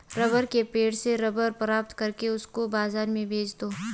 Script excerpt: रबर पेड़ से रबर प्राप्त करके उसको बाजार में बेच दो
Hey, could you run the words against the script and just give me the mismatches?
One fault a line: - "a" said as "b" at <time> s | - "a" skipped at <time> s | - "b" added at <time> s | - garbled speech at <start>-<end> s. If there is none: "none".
- "के" added at 0.4 s